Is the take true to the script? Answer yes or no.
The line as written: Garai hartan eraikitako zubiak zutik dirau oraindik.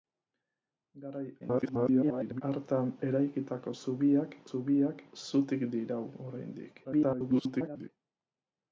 no